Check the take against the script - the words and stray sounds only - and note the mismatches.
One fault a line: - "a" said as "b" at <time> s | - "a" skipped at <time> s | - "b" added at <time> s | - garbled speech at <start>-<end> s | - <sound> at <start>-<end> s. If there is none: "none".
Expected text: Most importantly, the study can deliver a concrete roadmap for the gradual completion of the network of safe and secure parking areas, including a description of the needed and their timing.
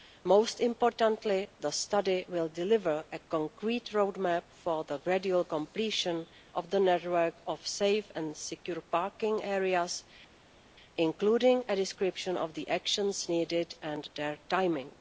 - "can" said as "will" at 2.3 s
- "actions" added at 12.7 s